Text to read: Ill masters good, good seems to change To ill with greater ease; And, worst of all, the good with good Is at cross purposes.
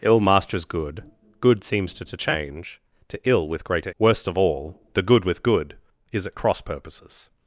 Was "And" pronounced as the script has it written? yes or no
no